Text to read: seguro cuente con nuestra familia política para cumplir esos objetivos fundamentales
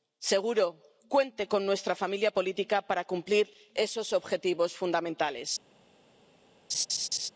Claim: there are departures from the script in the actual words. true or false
false